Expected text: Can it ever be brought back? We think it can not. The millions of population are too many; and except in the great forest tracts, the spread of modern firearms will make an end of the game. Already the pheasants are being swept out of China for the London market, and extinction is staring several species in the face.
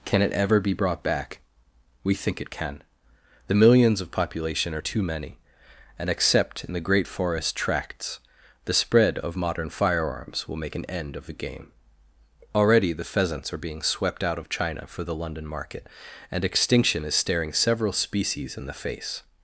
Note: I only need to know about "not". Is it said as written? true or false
false